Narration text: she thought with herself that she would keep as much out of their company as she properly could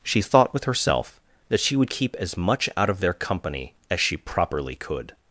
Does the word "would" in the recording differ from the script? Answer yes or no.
no